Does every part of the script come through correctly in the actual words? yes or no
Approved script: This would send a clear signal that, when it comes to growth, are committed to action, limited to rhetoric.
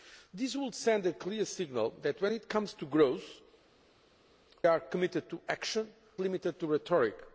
yes